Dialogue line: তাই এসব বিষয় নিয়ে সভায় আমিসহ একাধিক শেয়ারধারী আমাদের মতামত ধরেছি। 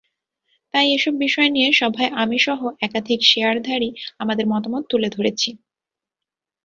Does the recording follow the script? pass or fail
fail